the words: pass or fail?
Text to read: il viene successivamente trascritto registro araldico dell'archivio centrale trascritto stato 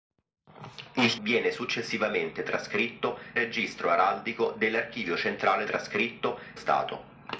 pass